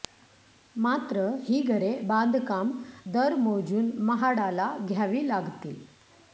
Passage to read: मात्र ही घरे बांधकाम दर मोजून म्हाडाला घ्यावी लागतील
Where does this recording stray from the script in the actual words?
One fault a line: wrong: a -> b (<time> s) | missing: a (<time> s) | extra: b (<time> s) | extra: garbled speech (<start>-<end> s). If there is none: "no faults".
no faults